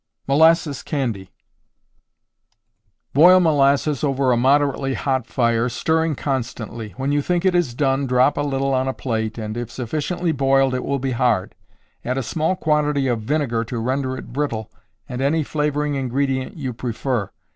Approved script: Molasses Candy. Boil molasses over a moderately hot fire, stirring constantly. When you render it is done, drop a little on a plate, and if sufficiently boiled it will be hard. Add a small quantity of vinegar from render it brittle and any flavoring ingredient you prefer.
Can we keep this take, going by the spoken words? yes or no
no